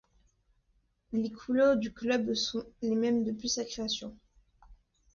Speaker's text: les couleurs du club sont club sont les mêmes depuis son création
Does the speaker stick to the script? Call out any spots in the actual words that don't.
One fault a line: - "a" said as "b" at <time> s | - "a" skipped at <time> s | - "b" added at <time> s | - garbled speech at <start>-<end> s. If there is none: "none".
- "club sont" skipped at 2.6 s
- "son" said as "sa" at 3.5 s